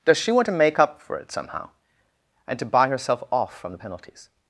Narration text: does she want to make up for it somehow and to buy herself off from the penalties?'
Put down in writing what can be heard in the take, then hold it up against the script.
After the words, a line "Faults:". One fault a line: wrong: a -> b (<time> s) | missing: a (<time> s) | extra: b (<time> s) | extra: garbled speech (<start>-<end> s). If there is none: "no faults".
does she want to make up for it somehow and to buy herself off from the penalties?'
Faults:
no faults